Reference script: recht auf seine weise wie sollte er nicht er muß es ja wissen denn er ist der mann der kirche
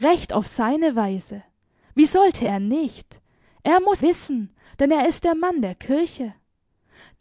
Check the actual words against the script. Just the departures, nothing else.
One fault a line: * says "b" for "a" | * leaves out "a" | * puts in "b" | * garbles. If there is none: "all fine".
* leaves out "es ja"